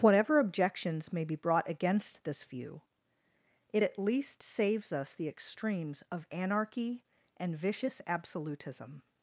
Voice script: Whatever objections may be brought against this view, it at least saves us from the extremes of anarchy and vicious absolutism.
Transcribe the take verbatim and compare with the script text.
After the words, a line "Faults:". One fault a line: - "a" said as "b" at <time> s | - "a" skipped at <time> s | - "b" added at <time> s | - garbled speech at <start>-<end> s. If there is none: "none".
Whatever objections may be brought against this view, it at least saves us the extremes of anarchy and vicious absolutism.
Faults:
- "from" skipped at 5.1 s